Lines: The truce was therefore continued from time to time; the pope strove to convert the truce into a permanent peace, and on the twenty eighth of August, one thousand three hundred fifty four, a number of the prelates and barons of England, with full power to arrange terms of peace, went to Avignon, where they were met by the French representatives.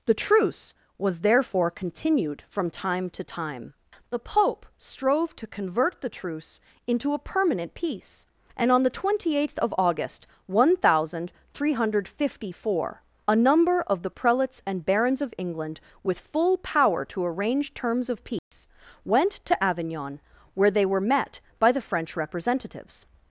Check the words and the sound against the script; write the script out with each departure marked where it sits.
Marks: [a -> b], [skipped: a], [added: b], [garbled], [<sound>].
The truce was therefore continued from time to time; the pope strove to convert the truce into a permanent peace, and on the twenty eighth of August, one thousand three hundred fifty four, a number of the prelates and barons of England, with full power to arrange terms of peace, [dropout] went to Avignon, where they were met by the French representatives.